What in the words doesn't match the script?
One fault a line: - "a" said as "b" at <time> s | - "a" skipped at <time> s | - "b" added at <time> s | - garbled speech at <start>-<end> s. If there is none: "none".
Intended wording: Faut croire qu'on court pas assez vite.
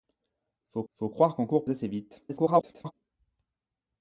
- "faut" added at 0.9 s
- "pas" skipped at 1.7 s
- garbled speech at 2.3-2.9 s